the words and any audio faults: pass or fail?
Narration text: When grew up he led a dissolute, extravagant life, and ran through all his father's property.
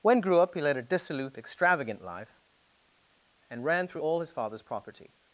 pass